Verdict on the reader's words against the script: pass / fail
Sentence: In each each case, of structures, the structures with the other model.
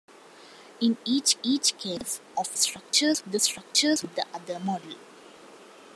pass